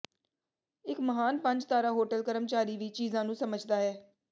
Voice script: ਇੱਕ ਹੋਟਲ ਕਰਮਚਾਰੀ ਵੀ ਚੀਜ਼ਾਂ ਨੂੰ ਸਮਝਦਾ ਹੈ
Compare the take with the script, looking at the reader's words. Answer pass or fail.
fail